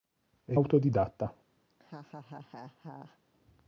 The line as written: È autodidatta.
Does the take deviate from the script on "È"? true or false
false